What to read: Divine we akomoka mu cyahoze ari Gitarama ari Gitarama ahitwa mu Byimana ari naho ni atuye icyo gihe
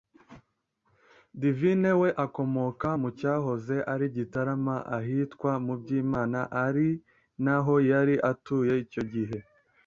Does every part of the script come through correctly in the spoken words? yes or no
no